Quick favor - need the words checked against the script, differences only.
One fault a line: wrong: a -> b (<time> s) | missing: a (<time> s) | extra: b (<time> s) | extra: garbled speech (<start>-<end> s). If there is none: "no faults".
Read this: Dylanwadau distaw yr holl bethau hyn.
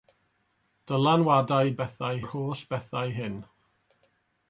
wrong: distaw -> bethau (1.8 s)